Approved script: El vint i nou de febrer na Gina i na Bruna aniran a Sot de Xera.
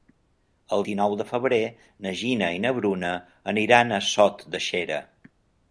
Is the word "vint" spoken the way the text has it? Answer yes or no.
no